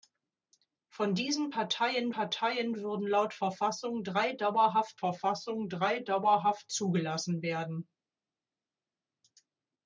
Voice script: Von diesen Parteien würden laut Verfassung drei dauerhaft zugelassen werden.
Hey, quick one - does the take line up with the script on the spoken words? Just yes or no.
no